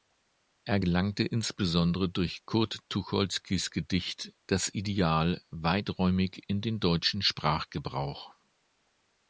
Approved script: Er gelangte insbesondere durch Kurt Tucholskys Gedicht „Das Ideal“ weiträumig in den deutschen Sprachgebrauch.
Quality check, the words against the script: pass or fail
pass